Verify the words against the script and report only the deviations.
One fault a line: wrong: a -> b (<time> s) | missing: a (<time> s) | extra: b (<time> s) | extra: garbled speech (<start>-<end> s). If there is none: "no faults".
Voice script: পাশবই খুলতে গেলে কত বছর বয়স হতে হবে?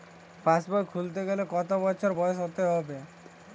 no faults